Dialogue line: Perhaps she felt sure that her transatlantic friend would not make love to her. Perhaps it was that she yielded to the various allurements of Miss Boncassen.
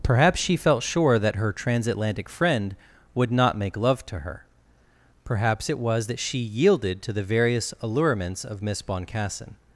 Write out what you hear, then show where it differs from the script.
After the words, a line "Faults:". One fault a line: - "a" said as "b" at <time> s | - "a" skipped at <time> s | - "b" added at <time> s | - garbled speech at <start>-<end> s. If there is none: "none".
Perhaps she felt sure that her transatlantic friend would not make love to her. Perhaps it was that she yielded to the various allurements of Miss Boncassen.
Faults:
none